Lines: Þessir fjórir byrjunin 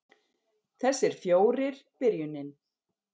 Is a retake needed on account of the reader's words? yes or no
no